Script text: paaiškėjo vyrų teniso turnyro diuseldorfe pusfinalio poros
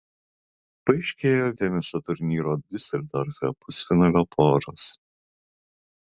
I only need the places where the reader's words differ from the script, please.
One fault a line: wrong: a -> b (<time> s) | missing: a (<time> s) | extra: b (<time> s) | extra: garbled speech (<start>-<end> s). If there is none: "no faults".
missing: vyrų (1.5 s)